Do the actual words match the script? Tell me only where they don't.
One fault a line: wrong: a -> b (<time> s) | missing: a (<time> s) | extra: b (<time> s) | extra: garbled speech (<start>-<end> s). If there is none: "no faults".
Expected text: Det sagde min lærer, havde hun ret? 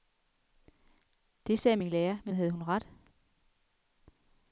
extra: men (2.2 s)